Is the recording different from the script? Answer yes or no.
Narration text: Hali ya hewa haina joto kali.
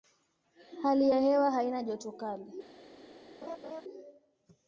no